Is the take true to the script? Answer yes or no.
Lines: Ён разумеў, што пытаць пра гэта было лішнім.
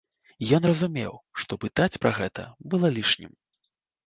yes